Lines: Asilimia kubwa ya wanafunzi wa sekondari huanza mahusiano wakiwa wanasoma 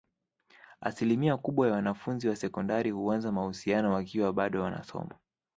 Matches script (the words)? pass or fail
fail